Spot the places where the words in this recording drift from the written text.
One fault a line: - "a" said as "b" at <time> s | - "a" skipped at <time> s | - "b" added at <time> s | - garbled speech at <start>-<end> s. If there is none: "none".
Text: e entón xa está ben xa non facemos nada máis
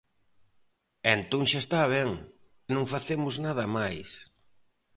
- "xa" skipped at 2.1 s